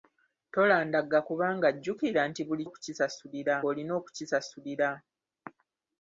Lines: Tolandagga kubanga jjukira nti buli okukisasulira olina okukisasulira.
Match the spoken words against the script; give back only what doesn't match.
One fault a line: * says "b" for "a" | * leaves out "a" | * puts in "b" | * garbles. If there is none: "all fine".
all fine